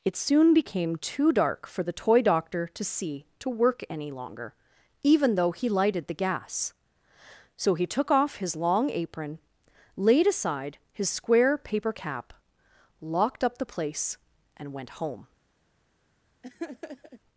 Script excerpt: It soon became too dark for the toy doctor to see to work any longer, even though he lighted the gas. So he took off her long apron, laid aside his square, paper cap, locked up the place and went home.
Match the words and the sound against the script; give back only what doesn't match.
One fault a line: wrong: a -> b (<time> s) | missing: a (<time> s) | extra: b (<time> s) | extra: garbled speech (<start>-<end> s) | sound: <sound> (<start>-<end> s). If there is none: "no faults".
wrong: her -> his (8.4 s)
sound: laugh (16.4-17.2 s)